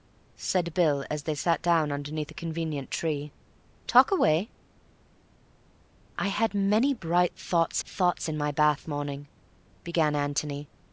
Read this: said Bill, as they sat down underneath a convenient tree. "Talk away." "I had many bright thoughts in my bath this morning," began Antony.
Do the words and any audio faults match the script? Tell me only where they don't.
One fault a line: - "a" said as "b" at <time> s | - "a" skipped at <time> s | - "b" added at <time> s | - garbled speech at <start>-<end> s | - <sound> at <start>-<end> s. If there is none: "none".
- "thoughts" added at 7.8 s
- "this" skipped at 8.9 s